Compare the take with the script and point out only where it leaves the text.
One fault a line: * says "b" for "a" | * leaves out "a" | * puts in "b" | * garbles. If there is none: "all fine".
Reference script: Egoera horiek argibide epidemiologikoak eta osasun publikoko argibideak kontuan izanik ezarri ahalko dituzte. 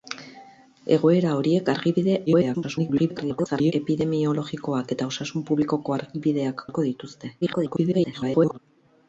* garbles
* leaves out "kontuan izanik ezarri"
* garbles